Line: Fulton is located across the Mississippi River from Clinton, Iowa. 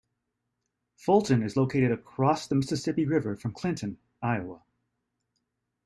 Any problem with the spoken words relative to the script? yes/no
no